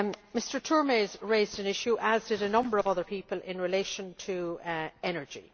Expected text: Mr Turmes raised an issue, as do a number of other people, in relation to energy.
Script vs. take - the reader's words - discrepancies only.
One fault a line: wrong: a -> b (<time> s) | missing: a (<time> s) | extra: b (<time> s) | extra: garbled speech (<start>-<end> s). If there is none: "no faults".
wrong: do -> did (2.3 s)